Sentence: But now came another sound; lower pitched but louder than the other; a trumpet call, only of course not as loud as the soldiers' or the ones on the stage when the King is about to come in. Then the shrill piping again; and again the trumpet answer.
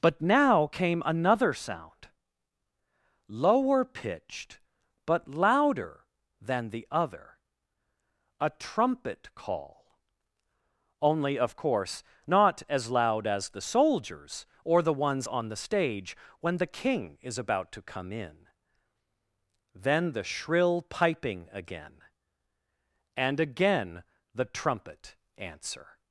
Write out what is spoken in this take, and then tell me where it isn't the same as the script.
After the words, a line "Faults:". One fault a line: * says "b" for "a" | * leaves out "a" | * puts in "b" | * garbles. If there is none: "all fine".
But now came another sound; lower pitched but louder than the other; a trumpet call, only of course not as loud as the soldiers' or the ones on the stage when the King is about to come in. Then the shrill piping again; and again the trumpet answer.
Faults:
all fine